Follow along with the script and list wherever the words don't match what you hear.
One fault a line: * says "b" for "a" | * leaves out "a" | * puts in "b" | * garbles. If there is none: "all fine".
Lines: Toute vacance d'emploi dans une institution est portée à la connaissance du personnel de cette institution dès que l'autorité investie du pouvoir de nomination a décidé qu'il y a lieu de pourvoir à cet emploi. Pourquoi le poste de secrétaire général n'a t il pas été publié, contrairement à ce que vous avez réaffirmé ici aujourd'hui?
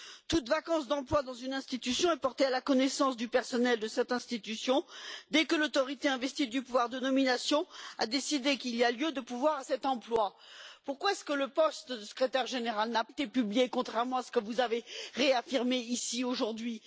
* leaves out "pas"